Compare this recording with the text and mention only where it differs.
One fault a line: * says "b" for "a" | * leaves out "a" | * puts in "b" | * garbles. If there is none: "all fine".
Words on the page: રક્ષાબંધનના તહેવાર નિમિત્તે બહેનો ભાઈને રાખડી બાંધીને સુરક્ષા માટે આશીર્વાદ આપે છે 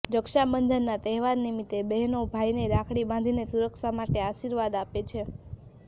all fine